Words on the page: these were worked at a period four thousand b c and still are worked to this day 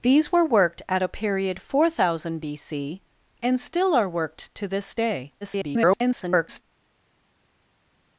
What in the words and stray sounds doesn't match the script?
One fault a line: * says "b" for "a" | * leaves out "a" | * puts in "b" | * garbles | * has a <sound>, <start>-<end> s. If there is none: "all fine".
* garbles